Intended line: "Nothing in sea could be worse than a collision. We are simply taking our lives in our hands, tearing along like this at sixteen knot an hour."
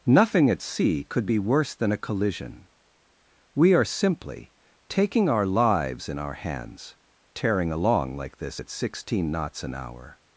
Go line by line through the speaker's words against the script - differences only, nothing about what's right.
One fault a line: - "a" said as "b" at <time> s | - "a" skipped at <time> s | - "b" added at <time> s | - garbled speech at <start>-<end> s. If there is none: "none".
- "in" said as "at" at 0.5 s
- "knot" said as "knots" at 9.3 s